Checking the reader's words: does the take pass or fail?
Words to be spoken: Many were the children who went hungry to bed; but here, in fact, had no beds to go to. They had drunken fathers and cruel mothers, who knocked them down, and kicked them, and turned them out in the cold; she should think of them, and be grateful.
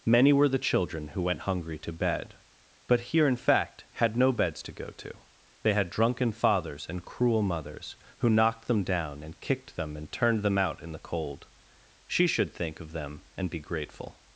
pass